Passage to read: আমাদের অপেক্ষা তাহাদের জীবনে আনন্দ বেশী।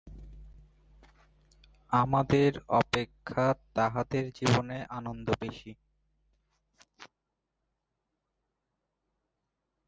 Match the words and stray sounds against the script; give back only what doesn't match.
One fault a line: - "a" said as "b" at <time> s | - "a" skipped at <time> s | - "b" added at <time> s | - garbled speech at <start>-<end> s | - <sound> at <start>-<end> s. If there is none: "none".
none